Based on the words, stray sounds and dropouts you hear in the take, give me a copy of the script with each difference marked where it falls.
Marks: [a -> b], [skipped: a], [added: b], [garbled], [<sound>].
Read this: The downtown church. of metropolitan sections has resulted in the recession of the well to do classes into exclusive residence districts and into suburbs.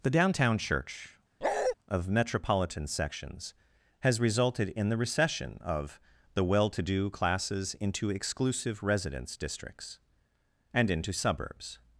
The downtown church. [bark] of metropolitan sections has resulted in the recession of the well to do classes into exclusive residence districts and into suburbs.